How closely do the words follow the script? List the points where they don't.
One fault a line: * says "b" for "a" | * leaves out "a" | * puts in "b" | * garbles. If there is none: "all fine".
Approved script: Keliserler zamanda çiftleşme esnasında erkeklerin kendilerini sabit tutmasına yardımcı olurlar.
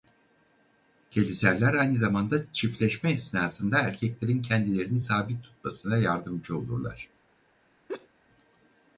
* puts in "aynı"